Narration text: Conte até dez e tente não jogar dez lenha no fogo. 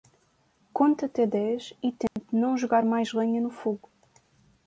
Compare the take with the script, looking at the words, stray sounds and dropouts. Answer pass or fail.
fail